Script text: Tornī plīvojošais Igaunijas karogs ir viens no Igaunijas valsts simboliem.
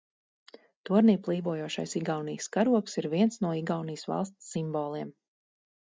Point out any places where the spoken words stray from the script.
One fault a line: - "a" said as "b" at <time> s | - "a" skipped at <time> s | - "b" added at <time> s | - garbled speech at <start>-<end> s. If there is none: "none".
none